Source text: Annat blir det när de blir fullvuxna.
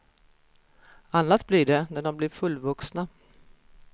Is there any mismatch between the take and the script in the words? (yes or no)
no